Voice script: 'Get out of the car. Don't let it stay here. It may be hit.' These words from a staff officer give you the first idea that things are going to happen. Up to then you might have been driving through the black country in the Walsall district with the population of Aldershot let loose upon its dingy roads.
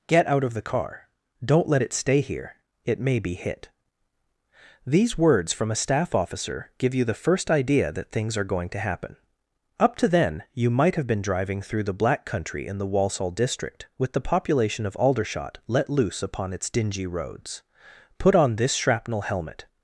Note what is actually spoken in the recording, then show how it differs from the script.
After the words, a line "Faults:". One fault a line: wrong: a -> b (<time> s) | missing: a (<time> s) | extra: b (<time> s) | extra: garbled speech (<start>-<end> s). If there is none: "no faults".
'Get out of the car. Don't let it stay here. It may be hit.' These words from a staff officer give you the first idea that things are going to happen. Up to then you might have been driving through the black country in the Walsall district with the population of Aldershot let loose upon its dingy roads. 'Put on this shrapnel helmet
Faults:
extra: Put on this shrapnel helmet (18.2 s)